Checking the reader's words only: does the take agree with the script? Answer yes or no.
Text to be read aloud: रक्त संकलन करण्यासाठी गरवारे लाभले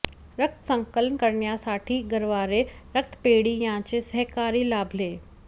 no